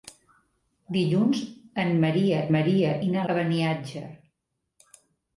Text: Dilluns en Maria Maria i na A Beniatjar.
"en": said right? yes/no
yes